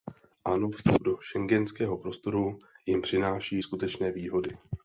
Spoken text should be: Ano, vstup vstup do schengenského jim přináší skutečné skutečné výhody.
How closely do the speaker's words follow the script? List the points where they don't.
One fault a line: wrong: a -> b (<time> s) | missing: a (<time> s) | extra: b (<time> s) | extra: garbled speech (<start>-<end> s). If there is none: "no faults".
missing: vstup (1.0 s)
extra: prostoru (2.0 s)
missing: skutečné (4.1 s)